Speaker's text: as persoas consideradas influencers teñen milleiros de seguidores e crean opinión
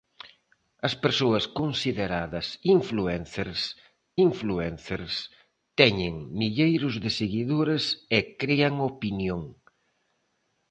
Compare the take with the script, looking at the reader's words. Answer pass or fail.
fail